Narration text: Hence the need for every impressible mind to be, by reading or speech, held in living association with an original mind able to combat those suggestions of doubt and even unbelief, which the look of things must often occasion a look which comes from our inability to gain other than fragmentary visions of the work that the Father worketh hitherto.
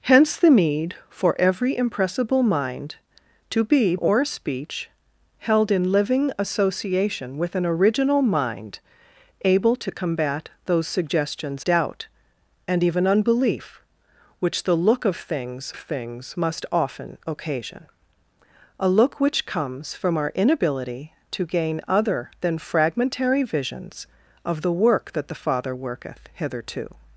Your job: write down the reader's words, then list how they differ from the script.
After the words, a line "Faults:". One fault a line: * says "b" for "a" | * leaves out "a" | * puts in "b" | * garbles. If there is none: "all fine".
Hence the need for every impressible mind to be, or speech, held in living association with an original mind able to combat those suggestions doubt and even unbelief, which the look of things things must often occasion a look which comes from our inability to gain other than fragmentary visions of the work that the Father worketh hitherto.
Faults:
* leaves out "by reading"
* leaves out "of"
* puts in "things"